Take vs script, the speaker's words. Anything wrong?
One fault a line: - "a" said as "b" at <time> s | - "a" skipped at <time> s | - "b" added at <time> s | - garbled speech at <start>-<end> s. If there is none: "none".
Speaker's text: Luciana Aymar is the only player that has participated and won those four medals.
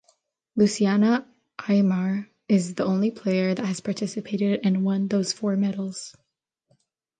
none